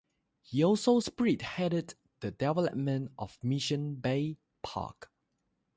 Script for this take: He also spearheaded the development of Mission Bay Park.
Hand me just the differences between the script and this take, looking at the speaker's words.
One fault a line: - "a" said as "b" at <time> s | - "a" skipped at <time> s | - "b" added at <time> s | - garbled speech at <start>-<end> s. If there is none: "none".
none